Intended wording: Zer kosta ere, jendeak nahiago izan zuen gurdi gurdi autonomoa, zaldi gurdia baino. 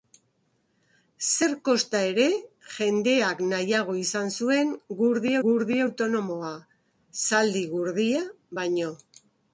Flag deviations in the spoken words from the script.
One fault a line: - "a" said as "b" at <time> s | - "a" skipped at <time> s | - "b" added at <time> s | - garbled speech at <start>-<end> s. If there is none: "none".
none